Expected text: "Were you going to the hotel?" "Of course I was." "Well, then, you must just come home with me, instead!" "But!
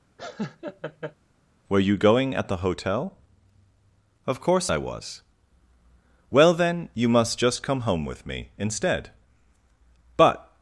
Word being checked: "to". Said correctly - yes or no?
no